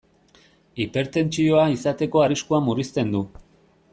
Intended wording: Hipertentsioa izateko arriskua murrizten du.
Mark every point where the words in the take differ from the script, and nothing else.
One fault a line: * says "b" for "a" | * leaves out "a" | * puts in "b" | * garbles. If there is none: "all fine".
all fine